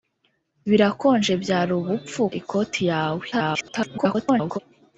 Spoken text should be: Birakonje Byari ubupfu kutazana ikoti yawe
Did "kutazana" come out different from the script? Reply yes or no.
yes